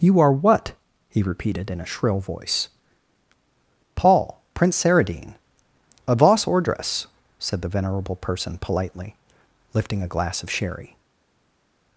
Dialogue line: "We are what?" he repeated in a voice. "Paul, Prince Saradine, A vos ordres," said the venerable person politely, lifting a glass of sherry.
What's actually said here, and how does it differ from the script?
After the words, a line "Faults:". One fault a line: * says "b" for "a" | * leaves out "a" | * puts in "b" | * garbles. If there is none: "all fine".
"You are what?" he repeated in a shrill voice. "Paul, Prince Saradine, A vos ordres," said the venerable person politely, lifting a glass of sherry.
Faults:
* says "You" for "We"
* puts in "shrill"